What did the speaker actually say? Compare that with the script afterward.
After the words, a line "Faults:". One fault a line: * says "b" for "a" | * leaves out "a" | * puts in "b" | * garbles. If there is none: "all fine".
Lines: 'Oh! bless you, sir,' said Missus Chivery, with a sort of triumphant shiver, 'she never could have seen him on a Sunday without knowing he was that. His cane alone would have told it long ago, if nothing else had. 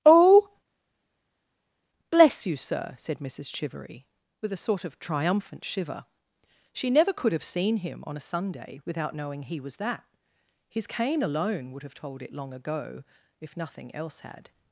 'Oh! bless you, sir,' said Missus Chivery, with a sort of triumphant shiver, 'she never could have seen him on a Sunday without knowing he was that. His cane alone would have told it long ago, if nothing else had.
Faults:
all fine